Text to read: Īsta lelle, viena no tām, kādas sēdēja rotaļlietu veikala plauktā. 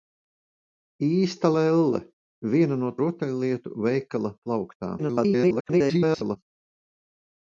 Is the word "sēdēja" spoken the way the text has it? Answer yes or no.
no